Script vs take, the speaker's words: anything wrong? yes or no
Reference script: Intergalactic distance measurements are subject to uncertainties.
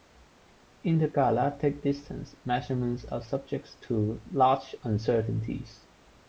yes